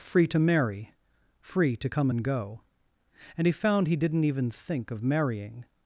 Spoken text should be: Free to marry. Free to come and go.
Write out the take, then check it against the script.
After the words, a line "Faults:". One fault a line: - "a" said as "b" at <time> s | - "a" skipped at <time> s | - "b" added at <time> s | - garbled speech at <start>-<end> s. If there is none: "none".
Free to marry. Free to come and go. And he found he didn't even think of marrying
Faults:
- "And he found he didn't even think of marrying" added at 3.4 s